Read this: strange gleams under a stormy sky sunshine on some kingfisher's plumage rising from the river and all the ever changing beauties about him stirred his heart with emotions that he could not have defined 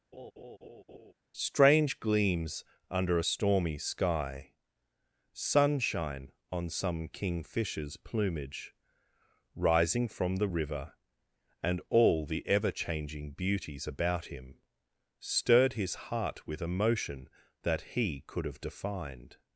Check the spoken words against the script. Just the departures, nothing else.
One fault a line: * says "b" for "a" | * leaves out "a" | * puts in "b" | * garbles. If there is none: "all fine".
* says "emotion" for "emotions"
* leaves out "not"